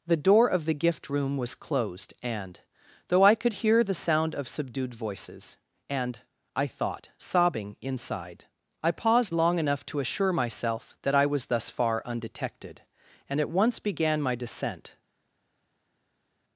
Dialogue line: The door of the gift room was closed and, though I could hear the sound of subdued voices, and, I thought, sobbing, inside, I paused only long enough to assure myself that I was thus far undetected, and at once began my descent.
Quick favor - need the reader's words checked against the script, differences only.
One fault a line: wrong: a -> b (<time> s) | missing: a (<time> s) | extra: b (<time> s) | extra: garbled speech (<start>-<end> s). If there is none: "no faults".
missing: only (9.3 s)